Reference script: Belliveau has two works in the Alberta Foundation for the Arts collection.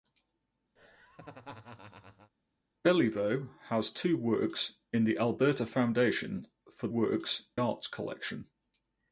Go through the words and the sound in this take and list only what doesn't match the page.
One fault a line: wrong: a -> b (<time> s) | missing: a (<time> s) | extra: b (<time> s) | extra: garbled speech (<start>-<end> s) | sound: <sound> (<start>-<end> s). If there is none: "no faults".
sound: laugh (0.8-2.3 s)
wrong: the -> works (6.9 s)